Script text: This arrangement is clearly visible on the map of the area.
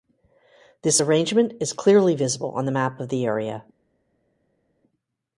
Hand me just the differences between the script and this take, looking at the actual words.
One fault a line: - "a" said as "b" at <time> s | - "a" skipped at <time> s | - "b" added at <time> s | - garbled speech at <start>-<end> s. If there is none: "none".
none